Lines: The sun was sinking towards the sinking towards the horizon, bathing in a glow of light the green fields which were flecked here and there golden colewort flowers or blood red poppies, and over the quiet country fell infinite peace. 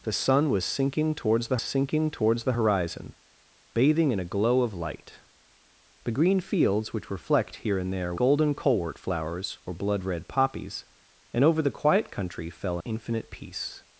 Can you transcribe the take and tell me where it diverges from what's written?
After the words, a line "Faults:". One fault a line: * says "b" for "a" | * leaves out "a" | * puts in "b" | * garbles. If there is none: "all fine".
The sun was sinking towards the sinking towards the horizon, bathing in a glow of light the green fields which were flecked here and there golden colewort flowers or blood red poppies, and over the quiet country fell infinite peace.
Faults:
all fine